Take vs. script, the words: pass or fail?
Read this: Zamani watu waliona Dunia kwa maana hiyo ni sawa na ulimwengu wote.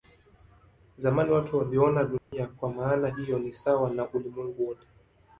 pass